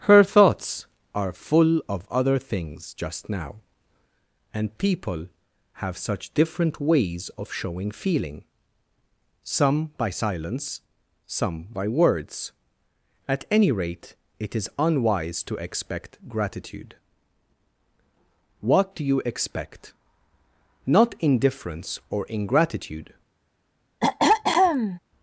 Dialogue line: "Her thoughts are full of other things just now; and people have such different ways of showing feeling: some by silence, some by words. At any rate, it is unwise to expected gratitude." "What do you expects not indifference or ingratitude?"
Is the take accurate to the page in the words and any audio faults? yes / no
no